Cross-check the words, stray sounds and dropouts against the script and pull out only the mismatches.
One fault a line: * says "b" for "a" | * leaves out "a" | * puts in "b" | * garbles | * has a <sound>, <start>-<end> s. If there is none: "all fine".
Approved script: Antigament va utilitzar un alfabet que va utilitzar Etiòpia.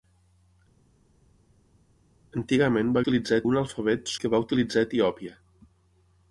all fine